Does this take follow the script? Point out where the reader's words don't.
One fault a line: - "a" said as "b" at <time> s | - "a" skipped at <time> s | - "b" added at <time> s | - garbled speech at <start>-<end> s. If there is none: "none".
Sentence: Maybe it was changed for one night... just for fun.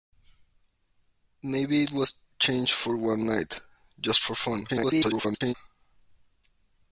- garbled speech at 4.7-5.5 s